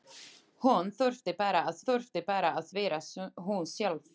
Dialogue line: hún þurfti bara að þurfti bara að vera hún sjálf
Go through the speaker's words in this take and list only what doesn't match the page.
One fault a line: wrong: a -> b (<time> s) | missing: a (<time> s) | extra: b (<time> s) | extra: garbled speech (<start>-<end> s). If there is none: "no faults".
no faults